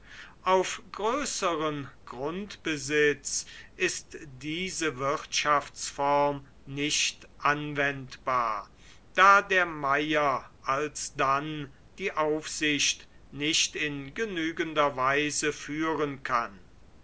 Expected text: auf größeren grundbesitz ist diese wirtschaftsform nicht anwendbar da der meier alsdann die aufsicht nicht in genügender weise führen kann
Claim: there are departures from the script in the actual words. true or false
false